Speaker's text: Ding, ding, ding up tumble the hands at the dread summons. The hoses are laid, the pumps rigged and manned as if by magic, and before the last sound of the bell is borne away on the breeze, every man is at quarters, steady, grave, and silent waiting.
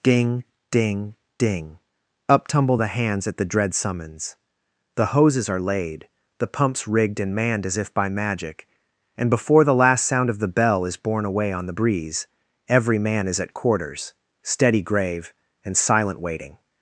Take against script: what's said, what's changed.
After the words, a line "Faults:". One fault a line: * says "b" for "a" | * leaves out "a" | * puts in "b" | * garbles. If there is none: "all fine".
Ding, ding, ding up tumble the hands at the dread summons. The hoses are laid, the pumps rigged and manned as if by magic, and before the last sound of the bell is borne away on the breeze, every man is at quarters, steady, grave, and silent waiting.
Faults:
all fine